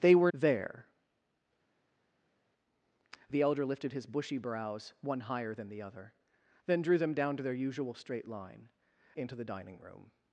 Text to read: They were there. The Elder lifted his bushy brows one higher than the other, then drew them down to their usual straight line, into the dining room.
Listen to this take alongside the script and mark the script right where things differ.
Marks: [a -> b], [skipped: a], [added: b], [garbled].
They were there. The Elder lifted his bushy brows one higher than the other, then drew them down to their usual straight line, into the dining room.